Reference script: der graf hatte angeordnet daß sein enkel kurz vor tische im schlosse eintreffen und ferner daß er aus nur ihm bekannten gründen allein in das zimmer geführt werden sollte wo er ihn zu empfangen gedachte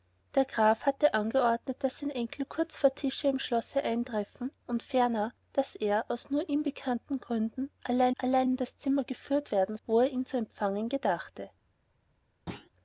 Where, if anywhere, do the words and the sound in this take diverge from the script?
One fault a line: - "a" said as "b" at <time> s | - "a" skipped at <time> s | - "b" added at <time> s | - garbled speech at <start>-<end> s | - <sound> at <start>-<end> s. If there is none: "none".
- "allein" added at 8.2 s
- "sollte" skipped at 9.8 s
- thud at 12.5-12.7 s